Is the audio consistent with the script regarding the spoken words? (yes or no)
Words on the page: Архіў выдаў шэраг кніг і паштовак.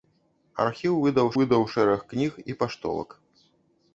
no